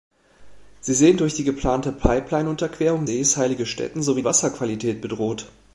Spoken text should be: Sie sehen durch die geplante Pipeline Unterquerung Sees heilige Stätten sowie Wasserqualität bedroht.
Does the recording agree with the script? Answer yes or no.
yes